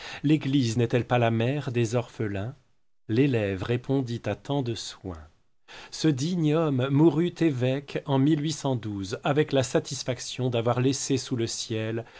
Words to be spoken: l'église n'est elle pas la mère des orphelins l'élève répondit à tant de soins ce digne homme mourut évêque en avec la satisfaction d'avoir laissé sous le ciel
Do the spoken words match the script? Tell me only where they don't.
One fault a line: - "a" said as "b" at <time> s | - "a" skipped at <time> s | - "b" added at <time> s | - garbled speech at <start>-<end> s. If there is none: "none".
none